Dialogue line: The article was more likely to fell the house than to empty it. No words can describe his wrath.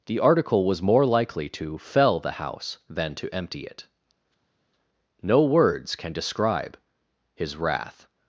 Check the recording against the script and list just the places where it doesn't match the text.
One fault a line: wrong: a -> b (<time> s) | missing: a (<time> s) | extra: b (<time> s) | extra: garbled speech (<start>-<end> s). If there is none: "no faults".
no faults